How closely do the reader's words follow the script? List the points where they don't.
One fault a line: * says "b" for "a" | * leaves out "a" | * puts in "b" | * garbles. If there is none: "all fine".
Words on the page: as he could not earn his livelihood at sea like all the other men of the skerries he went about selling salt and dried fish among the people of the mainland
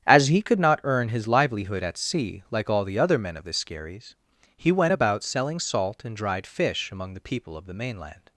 all fine